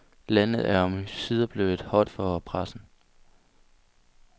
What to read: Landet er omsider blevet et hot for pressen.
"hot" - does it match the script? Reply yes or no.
yes